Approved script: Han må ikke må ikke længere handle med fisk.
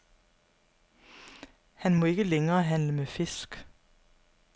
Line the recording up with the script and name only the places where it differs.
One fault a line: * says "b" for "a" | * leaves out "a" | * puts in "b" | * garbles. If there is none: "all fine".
* leaves out "må ikke"